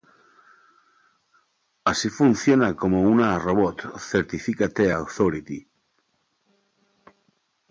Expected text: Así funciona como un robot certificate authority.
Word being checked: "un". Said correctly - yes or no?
no